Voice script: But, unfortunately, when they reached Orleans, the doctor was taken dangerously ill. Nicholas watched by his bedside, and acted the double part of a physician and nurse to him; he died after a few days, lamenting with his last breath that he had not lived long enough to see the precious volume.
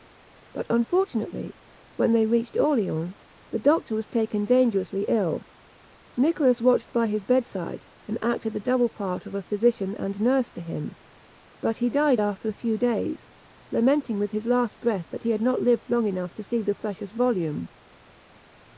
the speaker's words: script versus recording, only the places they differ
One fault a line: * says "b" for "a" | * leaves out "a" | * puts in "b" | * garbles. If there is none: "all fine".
* puts in "but"